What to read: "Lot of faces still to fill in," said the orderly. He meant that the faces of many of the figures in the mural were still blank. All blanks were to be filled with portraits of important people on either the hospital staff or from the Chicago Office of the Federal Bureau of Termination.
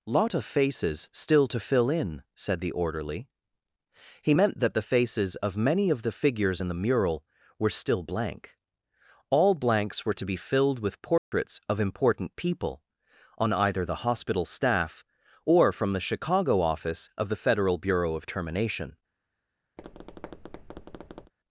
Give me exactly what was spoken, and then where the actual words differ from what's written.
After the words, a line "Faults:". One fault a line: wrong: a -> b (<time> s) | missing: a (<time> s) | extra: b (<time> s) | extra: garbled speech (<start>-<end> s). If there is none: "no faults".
"Lot of faces still to fill in," said the orderly. He meant that the faces of many of the figures in the mural were still blank. All blanks were to be filled with portraits of important people on either the hospital staff or from the Chicago Office of the Federal Bureau of Termination.
Faults:
no faults